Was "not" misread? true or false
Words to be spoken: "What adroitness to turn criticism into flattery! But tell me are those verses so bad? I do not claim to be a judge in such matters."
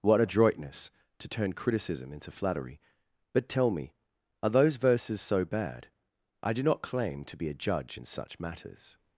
false